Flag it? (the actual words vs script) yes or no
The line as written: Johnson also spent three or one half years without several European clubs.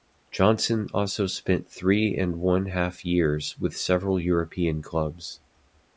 yes